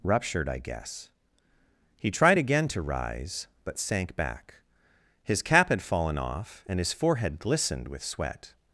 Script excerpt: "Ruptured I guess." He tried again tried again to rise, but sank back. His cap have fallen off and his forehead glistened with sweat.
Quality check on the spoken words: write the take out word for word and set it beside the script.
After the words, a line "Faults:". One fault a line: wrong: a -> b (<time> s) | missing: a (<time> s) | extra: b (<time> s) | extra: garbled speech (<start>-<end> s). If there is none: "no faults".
"Ruptured I guess." He tried again to rise, but sank back. His cap had fallen off and his forehead glistened with sweat.
Faults:
missing: tried again (2.7 s)
wrong: have -> had (5.7 s)